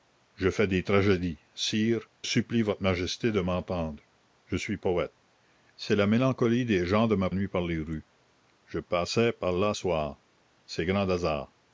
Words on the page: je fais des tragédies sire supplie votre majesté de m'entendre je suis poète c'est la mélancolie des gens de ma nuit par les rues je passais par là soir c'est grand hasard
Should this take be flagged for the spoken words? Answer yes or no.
no